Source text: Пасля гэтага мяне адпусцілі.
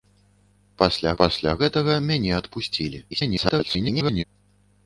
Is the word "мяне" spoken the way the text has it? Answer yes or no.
yes